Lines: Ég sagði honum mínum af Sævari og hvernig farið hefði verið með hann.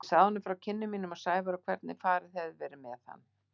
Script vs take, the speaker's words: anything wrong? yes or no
yes